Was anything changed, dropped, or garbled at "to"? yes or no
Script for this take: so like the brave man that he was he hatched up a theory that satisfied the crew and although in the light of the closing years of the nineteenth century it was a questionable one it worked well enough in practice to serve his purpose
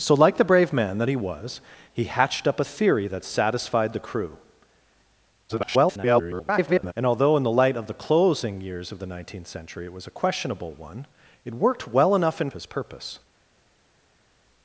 yes